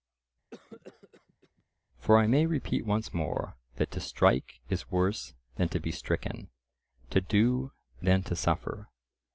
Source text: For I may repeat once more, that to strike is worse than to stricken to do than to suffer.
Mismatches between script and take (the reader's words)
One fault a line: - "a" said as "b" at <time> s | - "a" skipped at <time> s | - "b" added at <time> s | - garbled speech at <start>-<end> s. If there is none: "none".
- "be" added at 5.8 s